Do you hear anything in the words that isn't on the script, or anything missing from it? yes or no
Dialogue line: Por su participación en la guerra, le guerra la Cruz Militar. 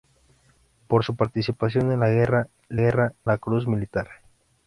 no